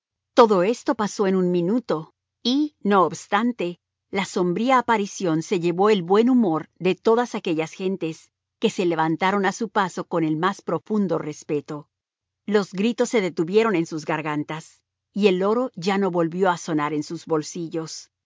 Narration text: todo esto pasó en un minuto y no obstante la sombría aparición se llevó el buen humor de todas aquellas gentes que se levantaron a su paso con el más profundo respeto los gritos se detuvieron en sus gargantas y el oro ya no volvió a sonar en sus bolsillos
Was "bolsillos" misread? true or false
false